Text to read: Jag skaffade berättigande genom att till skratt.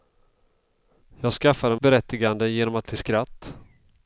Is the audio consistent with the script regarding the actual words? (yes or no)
yes